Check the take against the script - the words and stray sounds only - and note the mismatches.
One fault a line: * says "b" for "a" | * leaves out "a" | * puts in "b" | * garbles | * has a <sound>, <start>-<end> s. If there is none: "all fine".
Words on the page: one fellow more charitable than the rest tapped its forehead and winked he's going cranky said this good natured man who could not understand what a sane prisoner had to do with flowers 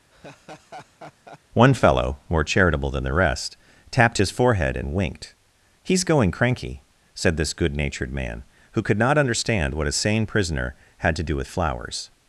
* has a laugh, 0.1-1.4 s
* says "his" for "its"